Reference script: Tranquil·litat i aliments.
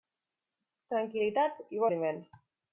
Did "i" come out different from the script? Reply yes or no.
no